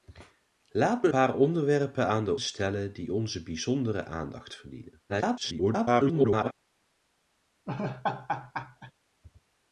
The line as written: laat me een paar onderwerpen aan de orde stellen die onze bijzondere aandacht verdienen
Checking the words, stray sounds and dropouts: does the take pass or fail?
fail